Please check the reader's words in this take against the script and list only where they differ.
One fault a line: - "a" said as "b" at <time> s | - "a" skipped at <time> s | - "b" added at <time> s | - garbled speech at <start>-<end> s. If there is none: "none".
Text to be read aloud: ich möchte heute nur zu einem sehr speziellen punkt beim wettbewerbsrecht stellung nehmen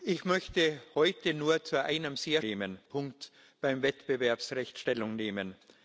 - "speziellen" said as "nehmen" at 2.4 s